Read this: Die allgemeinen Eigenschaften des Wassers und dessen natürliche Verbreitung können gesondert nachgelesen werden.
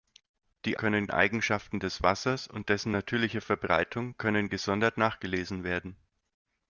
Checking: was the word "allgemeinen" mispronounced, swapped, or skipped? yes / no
yes